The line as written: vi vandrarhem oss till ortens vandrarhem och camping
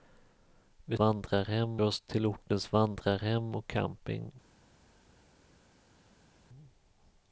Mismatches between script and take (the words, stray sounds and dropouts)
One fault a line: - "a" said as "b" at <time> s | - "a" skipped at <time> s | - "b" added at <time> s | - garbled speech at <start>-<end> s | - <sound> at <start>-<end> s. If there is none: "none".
none